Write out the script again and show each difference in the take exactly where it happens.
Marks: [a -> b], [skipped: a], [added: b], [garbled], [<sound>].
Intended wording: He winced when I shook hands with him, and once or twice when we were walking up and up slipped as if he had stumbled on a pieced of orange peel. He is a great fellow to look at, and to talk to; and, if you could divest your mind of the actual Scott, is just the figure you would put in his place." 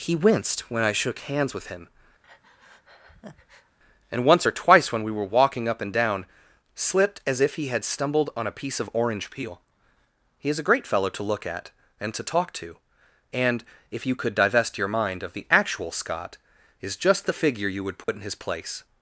He winced when I shook hands with him, [breath] and once or twice when we were walking up and [up -> down] slipped as if he had stumbled on a [pieced -> piece] of orange peel. He is a great fellow to look at, and to talk to; and, if you could divest your mind of the actual Scott, is just the figure you would put [dropout] in his place."